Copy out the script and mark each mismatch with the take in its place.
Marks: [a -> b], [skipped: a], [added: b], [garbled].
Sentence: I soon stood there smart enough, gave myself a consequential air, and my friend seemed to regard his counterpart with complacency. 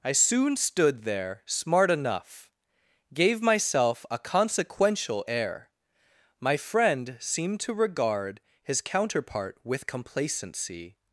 I soon stood there smart enough, gave myself a consequential air, [skipped: and] my friend seemed to regard his counterpart with complacency.